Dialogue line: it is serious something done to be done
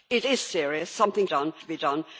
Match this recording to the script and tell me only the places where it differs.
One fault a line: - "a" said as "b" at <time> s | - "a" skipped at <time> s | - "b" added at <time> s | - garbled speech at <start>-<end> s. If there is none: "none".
none